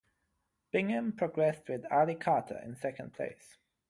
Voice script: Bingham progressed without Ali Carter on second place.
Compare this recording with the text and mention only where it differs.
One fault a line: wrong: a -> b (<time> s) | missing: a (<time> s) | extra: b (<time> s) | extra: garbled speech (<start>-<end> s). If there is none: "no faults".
wrong: without -> with (1.7 s)
wrong: on -> in (2.6 s)